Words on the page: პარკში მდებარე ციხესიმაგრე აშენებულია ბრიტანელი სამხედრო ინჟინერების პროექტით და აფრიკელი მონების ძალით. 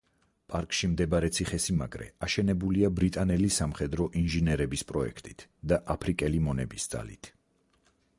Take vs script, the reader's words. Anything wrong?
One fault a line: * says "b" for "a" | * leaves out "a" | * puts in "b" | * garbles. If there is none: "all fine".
all fine